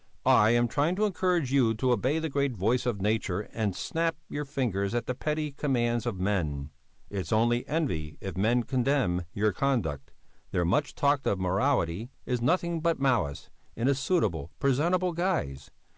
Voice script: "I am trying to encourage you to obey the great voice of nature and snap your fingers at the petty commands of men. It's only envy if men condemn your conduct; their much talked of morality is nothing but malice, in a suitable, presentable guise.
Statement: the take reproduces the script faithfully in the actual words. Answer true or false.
true